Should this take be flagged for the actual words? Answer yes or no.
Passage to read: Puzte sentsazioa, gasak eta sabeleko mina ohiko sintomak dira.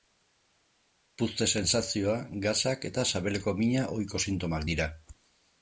no